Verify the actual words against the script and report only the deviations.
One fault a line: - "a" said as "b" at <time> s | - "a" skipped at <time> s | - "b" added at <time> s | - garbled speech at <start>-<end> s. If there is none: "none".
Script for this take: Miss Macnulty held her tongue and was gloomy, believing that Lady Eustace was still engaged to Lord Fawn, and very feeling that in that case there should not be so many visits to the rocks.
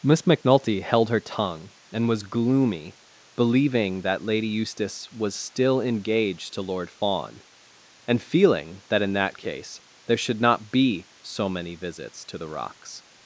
- "very" skipped at 8.2 s